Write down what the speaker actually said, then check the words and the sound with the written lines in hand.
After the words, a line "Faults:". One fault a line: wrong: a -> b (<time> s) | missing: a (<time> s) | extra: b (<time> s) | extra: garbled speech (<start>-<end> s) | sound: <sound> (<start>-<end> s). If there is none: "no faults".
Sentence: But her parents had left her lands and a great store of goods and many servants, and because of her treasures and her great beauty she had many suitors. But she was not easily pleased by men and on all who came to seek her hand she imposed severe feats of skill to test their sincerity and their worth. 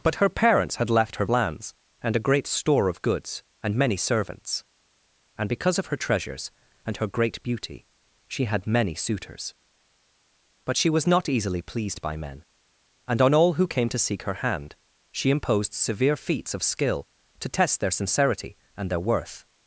But her parents had left her lands and a great store of goods and many servants, and because of her treasures and her great beauty she had many suitors. But she was not easily pleased by men and on all who came to seek her hand she imposed severe feats of skill to test their sincerity and their worth.
Faults:
no faults